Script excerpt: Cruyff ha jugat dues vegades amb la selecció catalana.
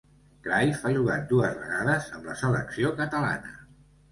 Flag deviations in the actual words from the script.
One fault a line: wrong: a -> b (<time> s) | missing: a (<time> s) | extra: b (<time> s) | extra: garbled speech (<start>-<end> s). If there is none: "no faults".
no faults